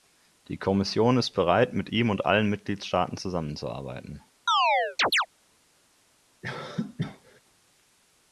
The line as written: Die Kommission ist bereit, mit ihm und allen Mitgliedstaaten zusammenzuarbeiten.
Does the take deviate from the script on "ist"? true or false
false